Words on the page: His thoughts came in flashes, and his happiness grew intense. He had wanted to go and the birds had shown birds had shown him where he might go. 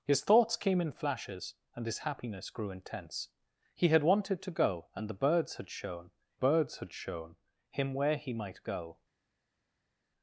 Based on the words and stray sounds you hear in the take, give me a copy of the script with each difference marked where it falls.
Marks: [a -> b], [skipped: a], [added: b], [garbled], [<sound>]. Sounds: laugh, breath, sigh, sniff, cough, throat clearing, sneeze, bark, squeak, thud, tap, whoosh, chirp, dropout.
His thoughts came in flashes, and his happiness grew intense. He had wanted to go and the birds had shown birds had shown him where he might go.